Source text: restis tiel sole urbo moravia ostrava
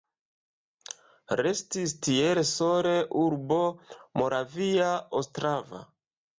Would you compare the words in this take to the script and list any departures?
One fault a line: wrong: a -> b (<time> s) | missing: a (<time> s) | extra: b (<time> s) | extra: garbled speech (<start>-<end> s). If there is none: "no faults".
no faults